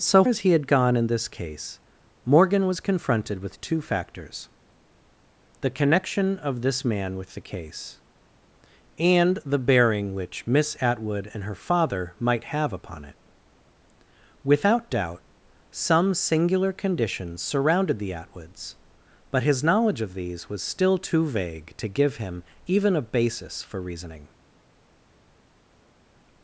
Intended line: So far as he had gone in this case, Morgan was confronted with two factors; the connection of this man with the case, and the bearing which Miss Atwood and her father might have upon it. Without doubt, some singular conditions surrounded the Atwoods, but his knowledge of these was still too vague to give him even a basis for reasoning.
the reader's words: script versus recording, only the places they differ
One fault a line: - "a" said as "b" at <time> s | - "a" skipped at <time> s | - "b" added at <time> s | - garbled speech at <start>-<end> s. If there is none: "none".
- "far" skipped at 0.2 s